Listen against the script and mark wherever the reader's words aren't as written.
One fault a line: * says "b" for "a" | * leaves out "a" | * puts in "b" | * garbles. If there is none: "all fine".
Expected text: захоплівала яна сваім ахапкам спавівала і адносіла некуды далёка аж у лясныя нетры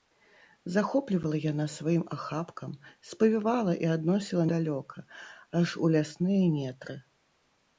* leaves out "некуды"